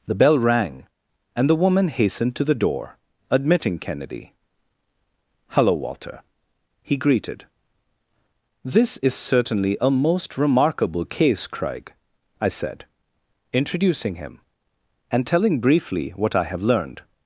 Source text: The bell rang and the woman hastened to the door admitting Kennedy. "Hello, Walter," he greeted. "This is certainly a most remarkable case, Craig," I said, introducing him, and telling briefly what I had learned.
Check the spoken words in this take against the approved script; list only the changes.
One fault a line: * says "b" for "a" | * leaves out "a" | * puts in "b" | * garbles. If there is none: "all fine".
* says "have" for "had"